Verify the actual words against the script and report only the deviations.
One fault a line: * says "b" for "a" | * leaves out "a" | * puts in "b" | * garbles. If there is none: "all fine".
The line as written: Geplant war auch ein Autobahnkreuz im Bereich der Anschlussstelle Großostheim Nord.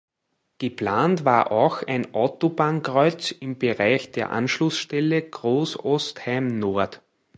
all fine